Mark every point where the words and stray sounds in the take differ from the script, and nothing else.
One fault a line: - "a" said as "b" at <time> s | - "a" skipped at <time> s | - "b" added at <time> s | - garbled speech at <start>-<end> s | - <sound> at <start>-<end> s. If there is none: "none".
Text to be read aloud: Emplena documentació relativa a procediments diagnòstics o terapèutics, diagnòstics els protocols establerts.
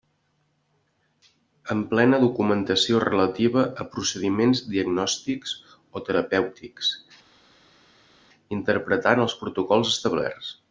- "diagnòstics" said as "interpretant" at 8.6 s